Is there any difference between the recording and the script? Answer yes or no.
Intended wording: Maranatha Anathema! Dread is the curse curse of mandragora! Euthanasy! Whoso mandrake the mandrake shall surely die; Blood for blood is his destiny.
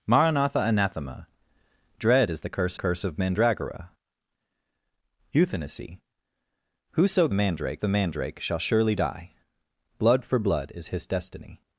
no